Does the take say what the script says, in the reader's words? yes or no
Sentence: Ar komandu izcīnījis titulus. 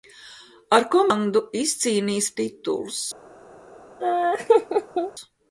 yes